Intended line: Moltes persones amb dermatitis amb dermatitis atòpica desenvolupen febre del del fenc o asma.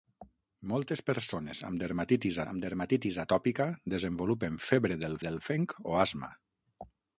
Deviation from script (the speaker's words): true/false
false